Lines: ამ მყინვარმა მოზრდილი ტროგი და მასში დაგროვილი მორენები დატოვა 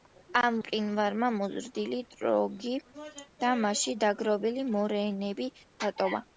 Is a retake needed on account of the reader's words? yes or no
no